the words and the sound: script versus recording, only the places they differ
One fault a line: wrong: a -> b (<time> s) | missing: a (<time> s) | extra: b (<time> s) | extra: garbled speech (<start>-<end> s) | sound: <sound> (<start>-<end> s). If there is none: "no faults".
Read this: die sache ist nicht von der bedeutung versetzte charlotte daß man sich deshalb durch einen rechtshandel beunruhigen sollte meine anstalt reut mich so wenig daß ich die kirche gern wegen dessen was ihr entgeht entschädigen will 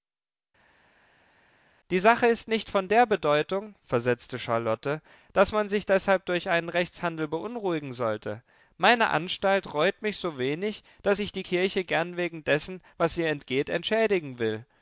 no faults